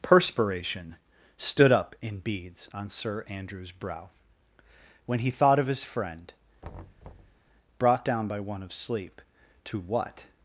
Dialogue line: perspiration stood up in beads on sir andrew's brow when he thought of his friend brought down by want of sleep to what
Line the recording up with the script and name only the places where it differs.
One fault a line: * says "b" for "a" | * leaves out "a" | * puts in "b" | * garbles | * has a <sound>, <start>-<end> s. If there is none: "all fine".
* has a thud, 6.6-7.4 s
* says "one" for "want"